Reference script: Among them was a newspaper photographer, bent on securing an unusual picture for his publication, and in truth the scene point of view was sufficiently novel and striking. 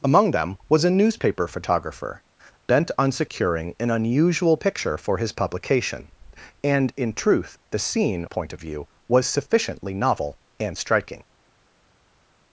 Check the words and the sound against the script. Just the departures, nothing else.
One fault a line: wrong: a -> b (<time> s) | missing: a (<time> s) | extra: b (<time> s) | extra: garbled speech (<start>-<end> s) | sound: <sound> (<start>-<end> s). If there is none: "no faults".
no faults